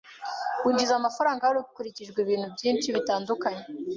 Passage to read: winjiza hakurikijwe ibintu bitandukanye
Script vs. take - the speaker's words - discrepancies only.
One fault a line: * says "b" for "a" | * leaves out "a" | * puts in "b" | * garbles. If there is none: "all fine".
* puts in "amafaranga"
* puts in "byinshi"